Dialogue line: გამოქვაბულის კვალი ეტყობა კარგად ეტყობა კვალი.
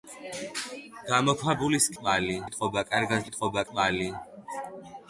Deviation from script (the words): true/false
false